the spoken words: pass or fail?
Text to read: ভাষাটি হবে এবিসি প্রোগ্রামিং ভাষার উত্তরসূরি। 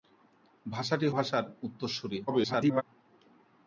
fail